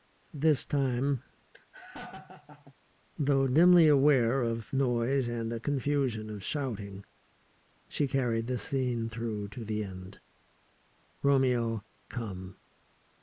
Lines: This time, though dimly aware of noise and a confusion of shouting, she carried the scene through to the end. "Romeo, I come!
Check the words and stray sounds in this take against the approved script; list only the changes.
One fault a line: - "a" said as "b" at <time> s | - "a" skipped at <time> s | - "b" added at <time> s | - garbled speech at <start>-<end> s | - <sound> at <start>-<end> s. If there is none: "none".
- laugh at 1.5-2.7 s
- "I" skipped at 11.9 s